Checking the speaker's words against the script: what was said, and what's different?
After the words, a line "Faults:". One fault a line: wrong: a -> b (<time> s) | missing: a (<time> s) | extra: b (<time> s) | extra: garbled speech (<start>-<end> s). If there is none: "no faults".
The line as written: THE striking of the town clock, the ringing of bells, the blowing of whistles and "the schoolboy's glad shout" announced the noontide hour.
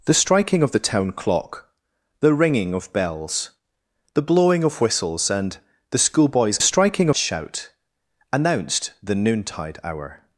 THE striking of the town clock, the ringing of bells, the blowing of whistles and "the schoolboy's striking shout" announced the noontide hour.
Faults:
wrong: glad -> striking (6.6 s)